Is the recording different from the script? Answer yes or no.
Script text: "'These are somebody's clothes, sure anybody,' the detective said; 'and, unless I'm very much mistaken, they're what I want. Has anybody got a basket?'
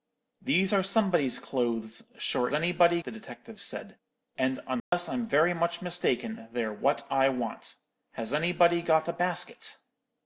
no